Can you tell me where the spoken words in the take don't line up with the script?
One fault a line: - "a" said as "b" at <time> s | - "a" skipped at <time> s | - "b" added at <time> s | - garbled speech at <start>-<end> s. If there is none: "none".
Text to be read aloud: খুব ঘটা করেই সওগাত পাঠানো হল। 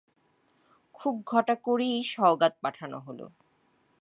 none